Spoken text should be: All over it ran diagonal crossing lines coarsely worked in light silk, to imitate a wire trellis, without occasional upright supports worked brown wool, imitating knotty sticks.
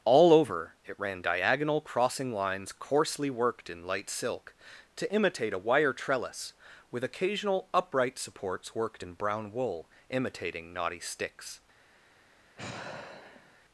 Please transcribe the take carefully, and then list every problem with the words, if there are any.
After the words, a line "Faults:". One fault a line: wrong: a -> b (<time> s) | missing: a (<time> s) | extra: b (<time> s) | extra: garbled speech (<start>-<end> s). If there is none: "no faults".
All over it ran diagonal crossing lines coarsely worked in light silk, to imitate a wire trellis, with occasional upright supports worked in brown wool, imitating knotty sticks.
Faults:
wrong: without -> with (6.9 s)
extra: in (9.0 s)